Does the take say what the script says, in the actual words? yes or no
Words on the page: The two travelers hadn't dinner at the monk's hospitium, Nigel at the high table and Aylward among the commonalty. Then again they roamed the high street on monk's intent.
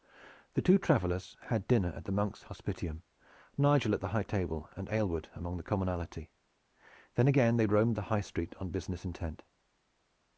no